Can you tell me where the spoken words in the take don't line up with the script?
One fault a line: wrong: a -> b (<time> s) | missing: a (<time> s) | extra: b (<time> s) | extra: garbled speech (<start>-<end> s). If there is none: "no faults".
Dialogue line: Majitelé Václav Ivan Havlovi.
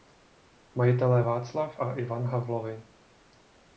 extra: a (1.8 s)